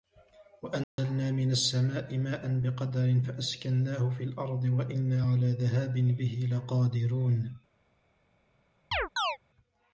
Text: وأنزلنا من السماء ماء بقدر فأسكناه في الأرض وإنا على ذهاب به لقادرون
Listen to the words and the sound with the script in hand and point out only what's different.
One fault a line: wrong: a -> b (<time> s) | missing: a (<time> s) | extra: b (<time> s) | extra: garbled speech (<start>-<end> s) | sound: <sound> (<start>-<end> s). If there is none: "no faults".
sound: dropout (0.8-1.0 s)
sound: chirp (8.9-9.4 s)